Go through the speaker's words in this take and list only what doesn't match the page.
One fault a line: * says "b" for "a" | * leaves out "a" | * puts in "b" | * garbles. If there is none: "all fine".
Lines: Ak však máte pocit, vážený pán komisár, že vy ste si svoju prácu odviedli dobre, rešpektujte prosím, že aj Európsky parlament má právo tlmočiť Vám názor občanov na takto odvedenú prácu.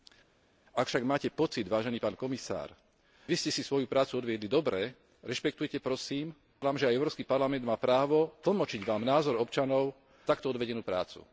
* leaves out "že"
* leaves out "na"